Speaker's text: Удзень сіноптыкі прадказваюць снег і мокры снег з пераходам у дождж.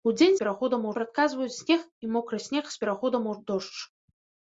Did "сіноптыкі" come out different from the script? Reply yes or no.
yes